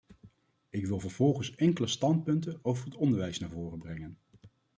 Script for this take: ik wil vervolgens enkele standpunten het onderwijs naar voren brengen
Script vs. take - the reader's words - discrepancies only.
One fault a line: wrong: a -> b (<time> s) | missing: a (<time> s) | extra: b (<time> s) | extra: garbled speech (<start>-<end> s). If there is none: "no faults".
extra: over (2.6 s)